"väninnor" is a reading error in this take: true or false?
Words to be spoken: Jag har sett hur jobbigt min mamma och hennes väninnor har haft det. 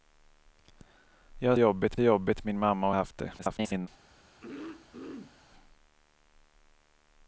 true